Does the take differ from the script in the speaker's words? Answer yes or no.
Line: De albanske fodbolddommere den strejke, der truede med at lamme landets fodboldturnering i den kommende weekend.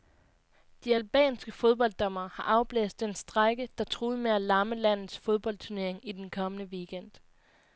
yes